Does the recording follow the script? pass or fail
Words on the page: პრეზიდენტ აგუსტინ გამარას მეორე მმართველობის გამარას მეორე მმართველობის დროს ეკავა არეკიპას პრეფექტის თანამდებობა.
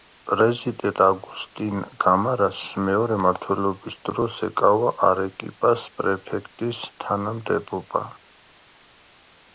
fail